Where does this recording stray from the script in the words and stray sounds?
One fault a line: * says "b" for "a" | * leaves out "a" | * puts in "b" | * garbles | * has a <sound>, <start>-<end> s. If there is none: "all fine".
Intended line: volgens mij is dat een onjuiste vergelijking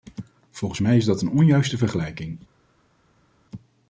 all fine